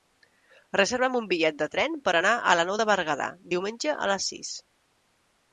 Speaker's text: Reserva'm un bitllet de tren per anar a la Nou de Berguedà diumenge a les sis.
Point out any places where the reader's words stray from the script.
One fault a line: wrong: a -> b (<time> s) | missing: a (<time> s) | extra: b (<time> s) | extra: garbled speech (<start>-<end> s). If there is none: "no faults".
no faults